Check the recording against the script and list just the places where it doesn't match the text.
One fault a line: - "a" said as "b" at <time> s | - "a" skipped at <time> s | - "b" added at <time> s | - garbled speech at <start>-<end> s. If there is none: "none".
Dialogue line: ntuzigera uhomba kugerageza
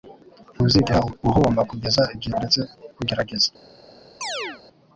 - "kugeza igihe uretse" added at 1.7 s